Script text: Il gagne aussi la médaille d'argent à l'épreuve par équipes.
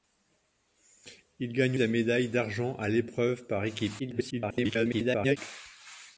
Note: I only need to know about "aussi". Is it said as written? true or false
false